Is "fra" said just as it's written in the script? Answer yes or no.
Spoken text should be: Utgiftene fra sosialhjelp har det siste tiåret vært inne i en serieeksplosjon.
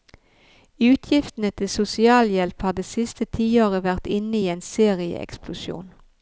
no